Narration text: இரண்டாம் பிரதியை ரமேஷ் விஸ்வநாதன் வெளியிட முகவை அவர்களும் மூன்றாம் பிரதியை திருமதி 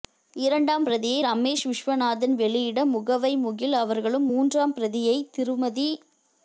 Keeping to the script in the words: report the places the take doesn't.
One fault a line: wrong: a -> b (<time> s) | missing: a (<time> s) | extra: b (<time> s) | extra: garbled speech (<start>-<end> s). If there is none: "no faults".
extra: முகில் (3.4 s)